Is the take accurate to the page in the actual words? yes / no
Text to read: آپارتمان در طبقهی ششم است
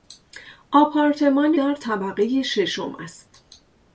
yes